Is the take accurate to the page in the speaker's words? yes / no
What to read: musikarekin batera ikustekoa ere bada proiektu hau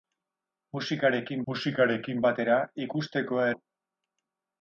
no